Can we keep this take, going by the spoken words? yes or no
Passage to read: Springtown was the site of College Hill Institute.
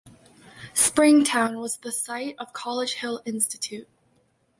yes